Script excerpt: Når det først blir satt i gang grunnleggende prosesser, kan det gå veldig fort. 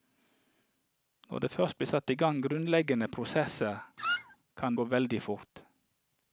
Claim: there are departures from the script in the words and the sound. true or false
true